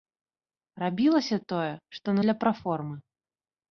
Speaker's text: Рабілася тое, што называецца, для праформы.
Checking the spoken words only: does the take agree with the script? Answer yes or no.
no